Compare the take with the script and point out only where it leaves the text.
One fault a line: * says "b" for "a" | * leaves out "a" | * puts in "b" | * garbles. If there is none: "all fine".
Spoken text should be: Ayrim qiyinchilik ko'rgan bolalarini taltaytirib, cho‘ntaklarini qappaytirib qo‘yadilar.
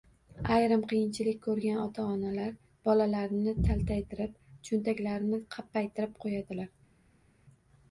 * puts in "ota onalar"